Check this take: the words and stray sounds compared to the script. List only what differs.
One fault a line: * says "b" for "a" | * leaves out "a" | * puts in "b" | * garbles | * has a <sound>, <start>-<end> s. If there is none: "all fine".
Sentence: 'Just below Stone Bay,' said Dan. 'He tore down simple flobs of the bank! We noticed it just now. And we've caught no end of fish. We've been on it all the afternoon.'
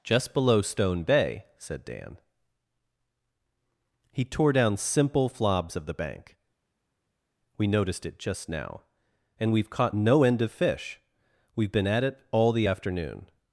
* says "at" for "on"